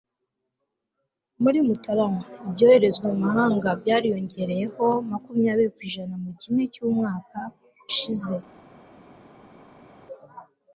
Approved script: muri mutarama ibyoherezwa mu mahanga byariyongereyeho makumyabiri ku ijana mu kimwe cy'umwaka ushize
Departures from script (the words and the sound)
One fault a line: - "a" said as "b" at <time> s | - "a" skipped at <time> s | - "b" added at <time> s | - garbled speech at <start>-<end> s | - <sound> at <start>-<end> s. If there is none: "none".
none